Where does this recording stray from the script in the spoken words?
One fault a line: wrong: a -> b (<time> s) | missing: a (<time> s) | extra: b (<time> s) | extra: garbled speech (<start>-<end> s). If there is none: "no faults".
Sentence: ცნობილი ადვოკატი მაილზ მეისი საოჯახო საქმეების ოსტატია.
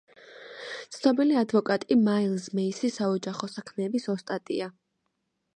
no faults